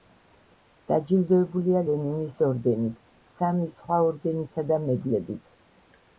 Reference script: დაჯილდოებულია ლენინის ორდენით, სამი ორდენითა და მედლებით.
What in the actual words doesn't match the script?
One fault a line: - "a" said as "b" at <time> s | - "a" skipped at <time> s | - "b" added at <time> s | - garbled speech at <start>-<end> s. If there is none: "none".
- "სხვა" added at 3.8 s